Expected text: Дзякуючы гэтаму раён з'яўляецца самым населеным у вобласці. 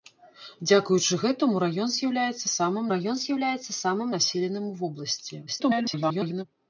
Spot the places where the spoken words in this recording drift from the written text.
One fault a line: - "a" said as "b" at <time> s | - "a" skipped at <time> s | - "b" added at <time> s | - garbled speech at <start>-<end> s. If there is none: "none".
- "раён з'яўляецца самым" added at 2.9 s
- garbled speech at 5.5-6.4 s